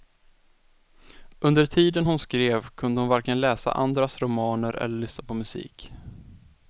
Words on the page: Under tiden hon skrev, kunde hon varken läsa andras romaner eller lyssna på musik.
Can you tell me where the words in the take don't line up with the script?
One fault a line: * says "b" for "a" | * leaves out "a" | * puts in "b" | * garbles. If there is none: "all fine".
all fine